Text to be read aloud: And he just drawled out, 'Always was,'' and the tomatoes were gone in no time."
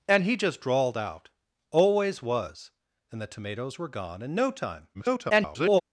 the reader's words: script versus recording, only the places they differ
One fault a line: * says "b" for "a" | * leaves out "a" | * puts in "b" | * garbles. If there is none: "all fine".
* garbles